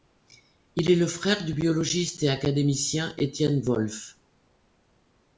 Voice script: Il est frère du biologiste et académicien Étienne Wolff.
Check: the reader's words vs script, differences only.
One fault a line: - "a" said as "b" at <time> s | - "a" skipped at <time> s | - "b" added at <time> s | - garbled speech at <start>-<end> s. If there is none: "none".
- "le" added at 0.9 s